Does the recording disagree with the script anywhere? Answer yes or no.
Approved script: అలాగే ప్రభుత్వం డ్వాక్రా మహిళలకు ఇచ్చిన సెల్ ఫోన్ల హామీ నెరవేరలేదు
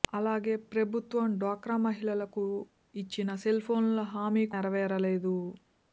no